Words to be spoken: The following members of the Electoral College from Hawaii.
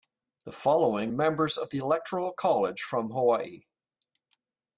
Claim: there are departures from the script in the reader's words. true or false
false